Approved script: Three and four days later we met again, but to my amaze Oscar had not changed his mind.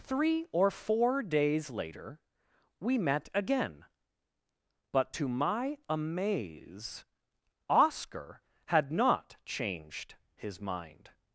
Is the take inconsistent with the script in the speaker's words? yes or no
yes